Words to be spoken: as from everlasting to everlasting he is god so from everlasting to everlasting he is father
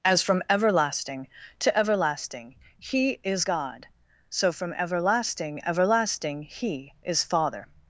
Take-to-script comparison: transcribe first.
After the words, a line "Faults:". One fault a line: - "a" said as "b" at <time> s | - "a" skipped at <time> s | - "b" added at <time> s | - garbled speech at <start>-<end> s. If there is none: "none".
as from everlasting to everlasting he is god so from everlasting everlasting he is father
Faults:
- "to" skipped at 5.6 s